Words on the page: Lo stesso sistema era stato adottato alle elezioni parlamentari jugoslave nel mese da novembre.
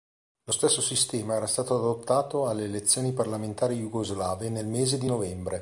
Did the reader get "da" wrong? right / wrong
wrong